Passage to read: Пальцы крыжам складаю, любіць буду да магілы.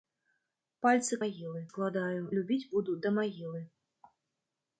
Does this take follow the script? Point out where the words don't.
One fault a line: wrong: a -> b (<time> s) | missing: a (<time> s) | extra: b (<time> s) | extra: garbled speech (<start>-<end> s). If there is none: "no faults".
wrong: крыжам -> магілы (1.2 s)